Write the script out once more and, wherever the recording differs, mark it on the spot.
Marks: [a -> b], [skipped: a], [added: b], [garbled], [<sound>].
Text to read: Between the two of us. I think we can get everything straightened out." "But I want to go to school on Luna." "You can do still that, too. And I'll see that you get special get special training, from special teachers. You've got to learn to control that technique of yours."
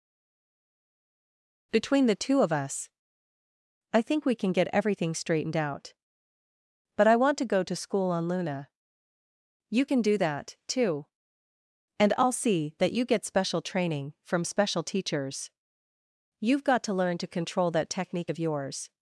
Between the two of us. I think we can get everything straightened out." "But I want to go to school on Luna." "You can do [skipped: still] that, too. And I'll see that you get special [skipped: get special] training, from special teachers. You've got to learn to control that technique of yours."